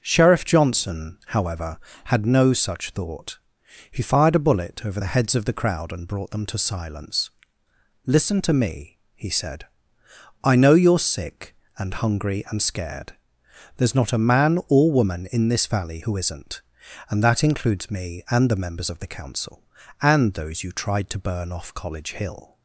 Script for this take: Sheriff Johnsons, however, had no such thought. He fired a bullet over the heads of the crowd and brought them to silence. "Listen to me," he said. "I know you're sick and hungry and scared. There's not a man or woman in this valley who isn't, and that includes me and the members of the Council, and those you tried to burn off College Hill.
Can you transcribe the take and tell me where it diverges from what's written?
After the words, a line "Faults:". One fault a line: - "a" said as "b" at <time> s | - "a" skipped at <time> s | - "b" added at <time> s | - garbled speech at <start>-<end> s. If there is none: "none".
Sheriff Johnson, however, had no such thought. He fired a bullet over the heads of the crowd and brought them to silence. "Listen to me," he said. "I know you're sick and hungry and scared. There's not a man or woman in this valley who isn't, and that includes me and the members of the Council, and those you tried to burn off College Hill.
Faults:
- "Johnsons" said as "Johnson" at 0.4 s